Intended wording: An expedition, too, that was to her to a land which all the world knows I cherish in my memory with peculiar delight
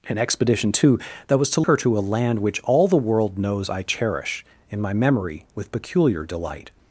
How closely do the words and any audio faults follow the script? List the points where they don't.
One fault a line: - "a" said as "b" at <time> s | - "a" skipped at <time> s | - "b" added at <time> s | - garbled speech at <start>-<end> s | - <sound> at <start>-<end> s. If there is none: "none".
none